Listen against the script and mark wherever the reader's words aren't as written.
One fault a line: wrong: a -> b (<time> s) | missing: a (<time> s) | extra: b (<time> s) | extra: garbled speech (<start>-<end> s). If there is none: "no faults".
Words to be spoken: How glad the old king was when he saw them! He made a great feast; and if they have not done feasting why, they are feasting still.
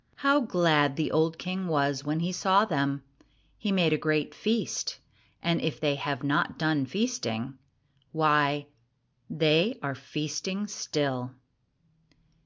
no faults